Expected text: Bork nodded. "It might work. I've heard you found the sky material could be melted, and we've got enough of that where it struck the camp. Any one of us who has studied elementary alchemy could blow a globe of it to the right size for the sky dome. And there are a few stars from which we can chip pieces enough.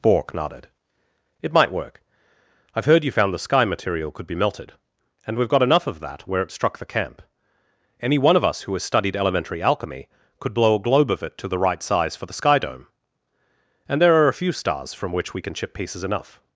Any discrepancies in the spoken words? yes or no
no